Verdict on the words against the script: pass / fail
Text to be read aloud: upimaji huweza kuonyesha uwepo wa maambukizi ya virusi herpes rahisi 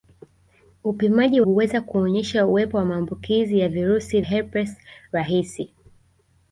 pass